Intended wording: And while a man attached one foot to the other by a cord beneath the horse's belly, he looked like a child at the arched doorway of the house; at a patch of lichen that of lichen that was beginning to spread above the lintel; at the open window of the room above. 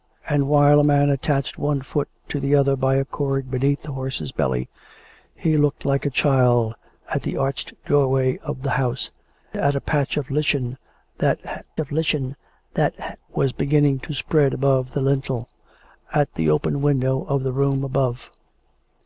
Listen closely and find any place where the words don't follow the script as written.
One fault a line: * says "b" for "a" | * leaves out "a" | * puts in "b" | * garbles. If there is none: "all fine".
all fine